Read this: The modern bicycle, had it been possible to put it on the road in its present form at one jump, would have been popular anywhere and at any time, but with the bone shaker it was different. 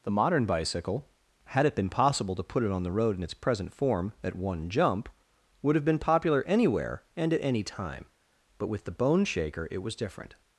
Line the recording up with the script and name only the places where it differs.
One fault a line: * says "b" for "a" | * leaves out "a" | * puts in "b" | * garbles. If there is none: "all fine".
all fine